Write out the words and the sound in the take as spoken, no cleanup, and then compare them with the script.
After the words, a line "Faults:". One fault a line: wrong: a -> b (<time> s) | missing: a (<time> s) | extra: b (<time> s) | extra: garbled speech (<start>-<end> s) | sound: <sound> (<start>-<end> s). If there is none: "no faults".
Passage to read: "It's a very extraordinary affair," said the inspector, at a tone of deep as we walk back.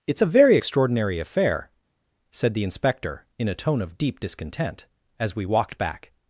"It's a very extraordinary affair," said the inspector, in a tone of deep discontent, as we walked back.
Faults:
wrong: at -> in (3.4 s)
extra: discontent (4.2 s)
wrong: walk -> walked (5.4 s)